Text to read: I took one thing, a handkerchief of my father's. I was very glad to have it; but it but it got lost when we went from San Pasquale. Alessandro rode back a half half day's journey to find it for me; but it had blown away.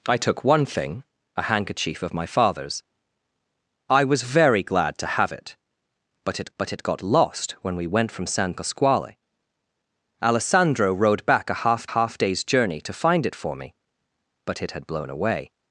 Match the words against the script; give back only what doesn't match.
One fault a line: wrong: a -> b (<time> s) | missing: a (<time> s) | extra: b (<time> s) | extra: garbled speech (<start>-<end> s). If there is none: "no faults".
no faults